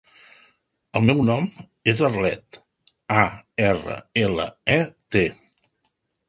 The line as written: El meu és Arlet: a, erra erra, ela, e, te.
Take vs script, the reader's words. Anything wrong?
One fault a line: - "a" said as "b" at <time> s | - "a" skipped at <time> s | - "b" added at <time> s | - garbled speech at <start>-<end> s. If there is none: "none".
- "nom" added at 1.3 s
- "erra" skipped at 4.0 s